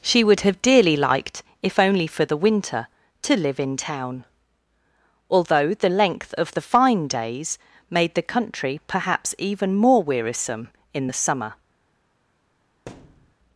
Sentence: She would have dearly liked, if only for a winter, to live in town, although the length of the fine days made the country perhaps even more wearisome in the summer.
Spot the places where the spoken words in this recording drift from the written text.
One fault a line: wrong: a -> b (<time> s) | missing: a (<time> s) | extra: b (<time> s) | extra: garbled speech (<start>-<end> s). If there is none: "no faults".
wrong: a -> the (2.2 s)